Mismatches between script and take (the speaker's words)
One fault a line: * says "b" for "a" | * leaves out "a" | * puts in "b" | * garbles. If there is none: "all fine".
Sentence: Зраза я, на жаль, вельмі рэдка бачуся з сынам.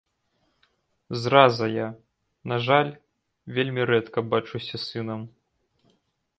all fine